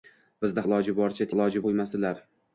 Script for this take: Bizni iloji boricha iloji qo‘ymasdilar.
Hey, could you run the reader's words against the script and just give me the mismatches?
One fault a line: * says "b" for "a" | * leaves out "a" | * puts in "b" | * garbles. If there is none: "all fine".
all fine